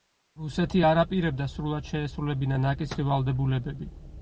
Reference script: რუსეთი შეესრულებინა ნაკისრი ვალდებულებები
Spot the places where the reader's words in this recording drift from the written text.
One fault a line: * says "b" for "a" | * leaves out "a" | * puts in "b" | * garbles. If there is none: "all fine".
* puts in "არ აპირებდა სრულად"